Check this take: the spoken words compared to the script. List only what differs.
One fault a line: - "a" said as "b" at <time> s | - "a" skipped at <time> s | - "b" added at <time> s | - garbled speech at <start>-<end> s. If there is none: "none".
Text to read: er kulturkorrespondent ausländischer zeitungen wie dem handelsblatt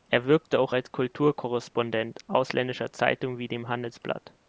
- "wirkte auch als" added at 0.2 s